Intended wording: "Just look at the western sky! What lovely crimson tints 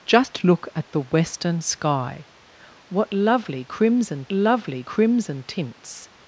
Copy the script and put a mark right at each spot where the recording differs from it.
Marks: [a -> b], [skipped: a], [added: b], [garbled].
"Just look at the western sky! What lovely crimson [added: lovely crimson] tints